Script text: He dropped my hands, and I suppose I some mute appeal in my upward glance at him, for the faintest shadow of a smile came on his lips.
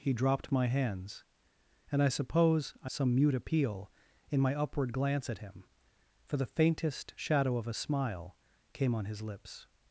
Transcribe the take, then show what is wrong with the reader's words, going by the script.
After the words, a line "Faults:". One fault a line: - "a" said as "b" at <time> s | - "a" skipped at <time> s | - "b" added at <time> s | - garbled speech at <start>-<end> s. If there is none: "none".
He dropped my hands, and I suppose I some mute appeal in my upward glance at him, for the faintest shadow of a smile came on his lips.
Faults:
none